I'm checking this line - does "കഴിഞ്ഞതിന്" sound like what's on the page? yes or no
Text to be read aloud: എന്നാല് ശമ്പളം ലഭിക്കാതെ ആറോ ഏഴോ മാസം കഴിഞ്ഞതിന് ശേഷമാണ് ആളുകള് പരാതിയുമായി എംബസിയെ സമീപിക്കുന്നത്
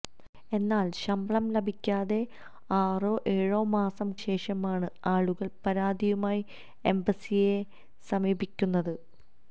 no